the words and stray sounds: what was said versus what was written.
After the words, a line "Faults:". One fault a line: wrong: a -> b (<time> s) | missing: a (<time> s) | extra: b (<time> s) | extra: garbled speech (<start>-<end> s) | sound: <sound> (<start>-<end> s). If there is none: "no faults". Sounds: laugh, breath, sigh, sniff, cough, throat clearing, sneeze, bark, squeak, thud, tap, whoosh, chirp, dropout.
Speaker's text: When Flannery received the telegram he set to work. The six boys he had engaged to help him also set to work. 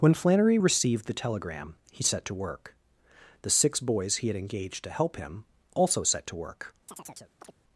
When Flannery received the telegram he set to work. The six boys he had engaged to help him also set to work.
Faults:
sound: chirp (6.9-7.5 s)